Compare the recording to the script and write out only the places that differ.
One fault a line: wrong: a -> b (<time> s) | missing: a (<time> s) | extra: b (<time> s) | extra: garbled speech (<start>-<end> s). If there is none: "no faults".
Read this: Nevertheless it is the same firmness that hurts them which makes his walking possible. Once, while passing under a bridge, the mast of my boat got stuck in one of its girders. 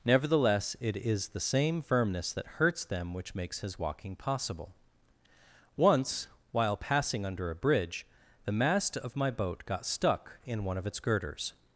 no faults